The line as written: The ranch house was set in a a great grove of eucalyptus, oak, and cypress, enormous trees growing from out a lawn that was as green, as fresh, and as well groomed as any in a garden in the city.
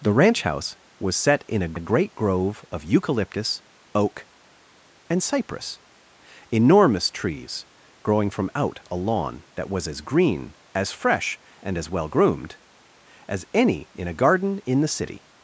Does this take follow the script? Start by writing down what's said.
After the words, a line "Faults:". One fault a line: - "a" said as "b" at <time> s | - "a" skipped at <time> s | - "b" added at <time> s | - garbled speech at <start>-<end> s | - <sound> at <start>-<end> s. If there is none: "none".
The ranch house was set in a a great grove of eucalyptus, oak, and cypress, enormous trees growing from out a lawn that was as green, as fresh, and as well groomed as any in a garden in the city.
Faults:
none